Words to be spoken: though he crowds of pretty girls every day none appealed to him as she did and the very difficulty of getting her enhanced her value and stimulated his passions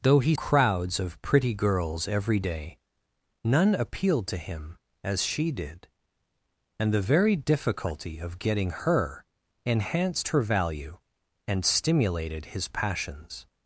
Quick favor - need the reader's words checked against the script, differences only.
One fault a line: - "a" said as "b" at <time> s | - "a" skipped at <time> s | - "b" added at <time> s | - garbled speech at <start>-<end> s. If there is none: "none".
none